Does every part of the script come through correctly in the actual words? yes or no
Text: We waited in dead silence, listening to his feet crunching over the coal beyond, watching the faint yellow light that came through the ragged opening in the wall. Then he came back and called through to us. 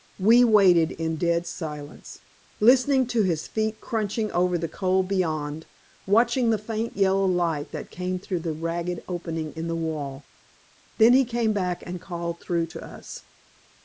yes